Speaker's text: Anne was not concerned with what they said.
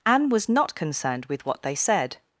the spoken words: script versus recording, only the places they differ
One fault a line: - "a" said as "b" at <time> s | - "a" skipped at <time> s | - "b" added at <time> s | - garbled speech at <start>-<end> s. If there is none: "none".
none